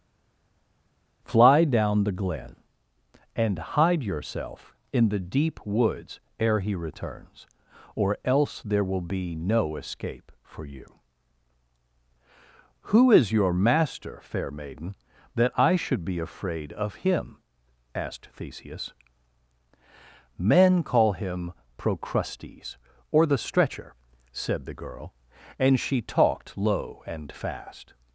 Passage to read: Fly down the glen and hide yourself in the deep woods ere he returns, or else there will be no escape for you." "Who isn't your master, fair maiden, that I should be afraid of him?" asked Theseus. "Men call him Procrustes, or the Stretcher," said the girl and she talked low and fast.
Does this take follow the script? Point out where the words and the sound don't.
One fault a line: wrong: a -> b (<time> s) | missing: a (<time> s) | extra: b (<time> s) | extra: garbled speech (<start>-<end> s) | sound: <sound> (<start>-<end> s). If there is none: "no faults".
wrong: isn't -> is (13.1 s)